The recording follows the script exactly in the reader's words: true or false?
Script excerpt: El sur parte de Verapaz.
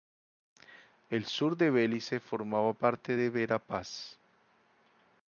false